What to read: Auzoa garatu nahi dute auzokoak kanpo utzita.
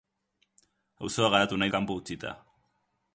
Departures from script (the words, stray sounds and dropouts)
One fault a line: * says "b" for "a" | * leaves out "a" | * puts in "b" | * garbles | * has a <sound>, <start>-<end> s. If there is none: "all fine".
* leaves out "dute auzokoak"